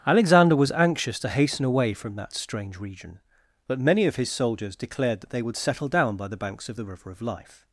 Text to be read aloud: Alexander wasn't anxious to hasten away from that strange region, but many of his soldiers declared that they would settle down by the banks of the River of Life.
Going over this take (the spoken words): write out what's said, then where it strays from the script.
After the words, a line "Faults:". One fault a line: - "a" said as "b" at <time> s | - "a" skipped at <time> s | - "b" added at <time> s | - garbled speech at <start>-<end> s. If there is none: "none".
Alexander was anxious to hasten away from that strange region, but many of his soldiers declared that they would settle down by the banks of the River of Life.
Faults:
- "wasn't" said as "was" at 0.6 s